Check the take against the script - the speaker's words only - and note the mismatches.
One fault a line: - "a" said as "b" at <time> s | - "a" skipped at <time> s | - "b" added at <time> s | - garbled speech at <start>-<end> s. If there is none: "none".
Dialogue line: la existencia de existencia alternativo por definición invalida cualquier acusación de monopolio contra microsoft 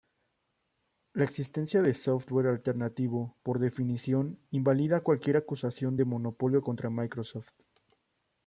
- "existencia" said as "software" at 1.9 s